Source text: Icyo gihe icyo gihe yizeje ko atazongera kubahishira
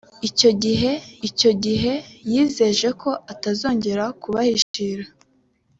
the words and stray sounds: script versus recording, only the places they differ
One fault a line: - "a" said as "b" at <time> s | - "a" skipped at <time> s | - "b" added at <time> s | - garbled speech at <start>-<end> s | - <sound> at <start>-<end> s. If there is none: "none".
- dropout at 4.6-4.7 s